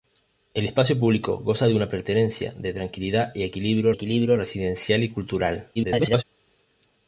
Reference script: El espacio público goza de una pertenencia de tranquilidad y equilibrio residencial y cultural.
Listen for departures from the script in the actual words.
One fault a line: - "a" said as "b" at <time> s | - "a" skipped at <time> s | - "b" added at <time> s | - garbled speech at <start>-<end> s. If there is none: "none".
- "equilibrio" added at 3.9 s
- garbled speech at 5.8-6.2 s